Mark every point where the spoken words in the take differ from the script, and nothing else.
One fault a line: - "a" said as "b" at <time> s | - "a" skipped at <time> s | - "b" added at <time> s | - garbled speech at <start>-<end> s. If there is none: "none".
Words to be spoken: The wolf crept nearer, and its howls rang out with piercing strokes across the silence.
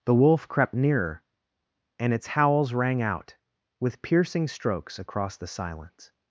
none